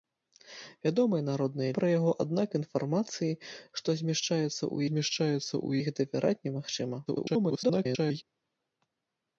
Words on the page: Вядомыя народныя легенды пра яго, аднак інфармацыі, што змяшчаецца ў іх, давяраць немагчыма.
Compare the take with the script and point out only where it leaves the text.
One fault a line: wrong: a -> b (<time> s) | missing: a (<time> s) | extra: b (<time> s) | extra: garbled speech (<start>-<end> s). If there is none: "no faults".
missing: легенды (1.8 s)
extra: змяшчаецца ў (4.9 s)
extra: garbled speech (7.1-8.2 s)